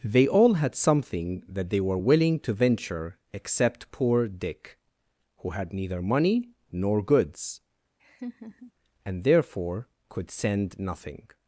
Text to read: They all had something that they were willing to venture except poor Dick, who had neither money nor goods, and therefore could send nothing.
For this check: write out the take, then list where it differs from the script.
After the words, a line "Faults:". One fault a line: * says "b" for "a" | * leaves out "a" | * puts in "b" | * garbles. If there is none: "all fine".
They all had something that they were willing to venture except poor Dick, who had neither money nor goods, and therefore could send nothing.
Faults:
all fine